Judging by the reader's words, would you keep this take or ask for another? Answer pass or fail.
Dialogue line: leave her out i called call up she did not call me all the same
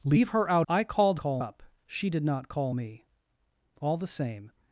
pass